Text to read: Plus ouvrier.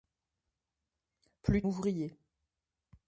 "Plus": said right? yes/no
yes